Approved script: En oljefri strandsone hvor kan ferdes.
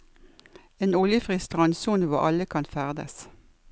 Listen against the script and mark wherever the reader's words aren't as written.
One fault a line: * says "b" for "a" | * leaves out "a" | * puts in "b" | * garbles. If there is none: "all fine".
* puts in "alle"